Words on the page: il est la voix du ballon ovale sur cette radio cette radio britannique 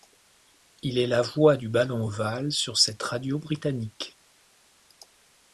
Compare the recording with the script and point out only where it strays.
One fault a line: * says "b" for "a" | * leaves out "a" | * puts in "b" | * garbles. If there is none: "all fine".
* leaves out "cette radio"